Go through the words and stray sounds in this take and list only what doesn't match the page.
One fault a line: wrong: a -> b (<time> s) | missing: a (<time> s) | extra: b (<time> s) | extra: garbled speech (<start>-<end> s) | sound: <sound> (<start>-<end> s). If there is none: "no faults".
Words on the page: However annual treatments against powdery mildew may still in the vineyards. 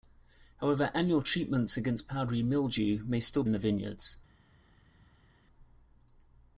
no faults